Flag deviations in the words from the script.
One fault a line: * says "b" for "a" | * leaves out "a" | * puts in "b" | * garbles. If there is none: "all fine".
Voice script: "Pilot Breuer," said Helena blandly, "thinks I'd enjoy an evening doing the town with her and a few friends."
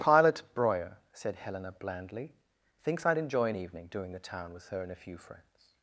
all fine